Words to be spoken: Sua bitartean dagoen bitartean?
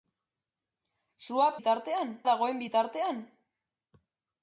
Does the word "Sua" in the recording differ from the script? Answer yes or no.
no